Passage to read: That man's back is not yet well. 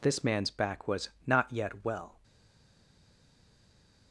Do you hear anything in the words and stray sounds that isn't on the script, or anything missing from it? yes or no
yes